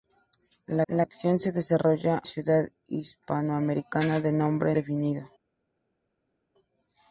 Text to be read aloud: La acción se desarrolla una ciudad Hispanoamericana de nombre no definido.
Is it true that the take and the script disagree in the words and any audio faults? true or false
true